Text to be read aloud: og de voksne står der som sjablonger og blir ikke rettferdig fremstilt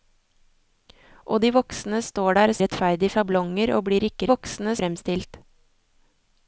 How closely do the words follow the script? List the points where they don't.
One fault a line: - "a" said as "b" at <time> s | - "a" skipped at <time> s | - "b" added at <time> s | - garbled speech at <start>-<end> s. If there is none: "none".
- "som" said as "rettferdig" at 2.6 s
- "rettferdig" said as "voksne" at 4.3 s